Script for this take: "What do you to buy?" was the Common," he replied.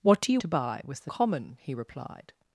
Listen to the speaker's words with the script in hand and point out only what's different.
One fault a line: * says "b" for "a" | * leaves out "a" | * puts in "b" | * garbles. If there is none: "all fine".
all fine